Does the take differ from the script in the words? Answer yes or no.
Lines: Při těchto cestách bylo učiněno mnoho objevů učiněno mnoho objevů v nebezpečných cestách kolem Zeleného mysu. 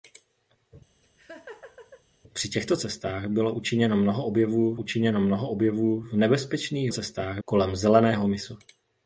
no